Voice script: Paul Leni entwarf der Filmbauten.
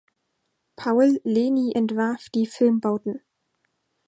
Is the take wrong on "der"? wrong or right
wrong